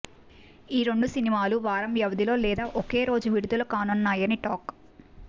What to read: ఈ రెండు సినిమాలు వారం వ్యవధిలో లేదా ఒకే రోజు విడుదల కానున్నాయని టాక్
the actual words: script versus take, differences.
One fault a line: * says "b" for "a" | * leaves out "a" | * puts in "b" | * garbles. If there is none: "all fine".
all fine